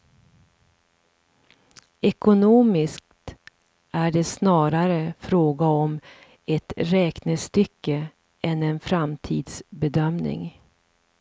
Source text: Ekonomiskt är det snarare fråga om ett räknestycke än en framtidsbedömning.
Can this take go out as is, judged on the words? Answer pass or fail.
pass